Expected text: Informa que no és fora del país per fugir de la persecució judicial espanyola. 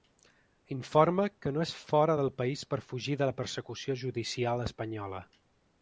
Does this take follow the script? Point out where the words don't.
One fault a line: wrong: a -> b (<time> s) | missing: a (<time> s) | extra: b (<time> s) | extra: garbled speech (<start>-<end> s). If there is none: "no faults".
no faults